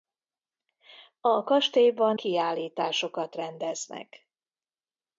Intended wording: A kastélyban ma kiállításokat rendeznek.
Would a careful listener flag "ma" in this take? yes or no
yes